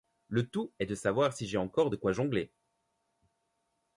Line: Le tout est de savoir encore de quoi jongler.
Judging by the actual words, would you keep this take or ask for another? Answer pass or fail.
fail